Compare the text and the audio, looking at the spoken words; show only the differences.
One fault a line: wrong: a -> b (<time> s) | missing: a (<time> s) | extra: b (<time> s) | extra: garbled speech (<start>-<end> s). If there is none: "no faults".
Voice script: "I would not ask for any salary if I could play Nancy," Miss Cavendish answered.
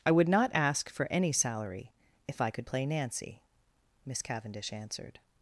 no faults